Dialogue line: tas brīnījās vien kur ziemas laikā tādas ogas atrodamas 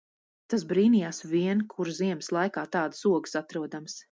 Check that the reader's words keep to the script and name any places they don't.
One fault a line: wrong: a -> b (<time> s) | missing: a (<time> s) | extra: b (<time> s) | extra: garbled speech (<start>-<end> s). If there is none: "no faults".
no faults